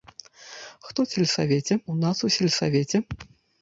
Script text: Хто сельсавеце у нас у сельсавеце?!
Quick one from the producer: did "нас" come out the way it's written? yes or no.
yes